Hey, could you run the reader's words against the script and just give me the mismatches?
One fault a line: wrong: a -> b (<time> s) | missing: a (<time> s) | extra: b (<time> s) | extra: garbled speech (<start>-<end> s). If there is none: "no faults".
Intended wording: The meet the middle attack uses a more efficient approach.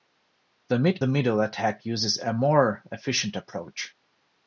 no faults